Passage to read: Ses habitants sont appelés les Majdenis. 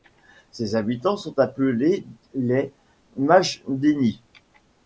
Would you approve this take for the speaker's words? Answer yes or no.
yes